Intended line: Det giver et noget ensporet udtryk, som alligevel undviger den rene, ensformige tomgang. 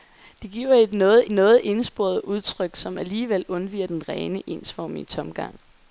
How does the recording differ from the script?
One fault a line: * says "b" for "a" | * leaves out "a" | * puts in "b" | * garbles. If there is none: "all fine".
* puts in "noget"